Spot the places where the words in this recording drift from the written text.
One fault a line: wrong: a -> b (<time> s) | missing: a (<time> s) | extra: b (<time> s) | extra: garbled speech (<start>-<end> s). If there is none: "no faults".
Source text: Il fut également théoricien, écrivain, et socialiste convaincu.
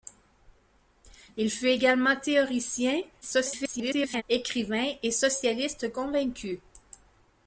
extra: garbled speech (3.2-4.2 s)